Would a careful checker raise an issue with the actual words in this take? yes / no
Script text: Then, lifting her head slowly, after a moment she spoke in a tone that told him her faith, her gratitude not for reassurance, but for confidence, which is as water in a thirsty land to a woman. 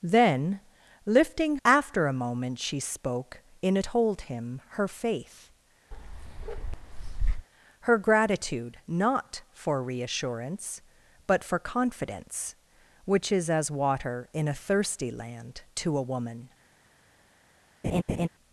yes